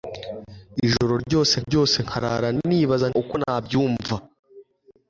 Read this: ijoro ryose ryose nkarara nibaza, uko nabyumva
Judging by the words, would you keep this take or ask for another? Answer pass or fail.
pass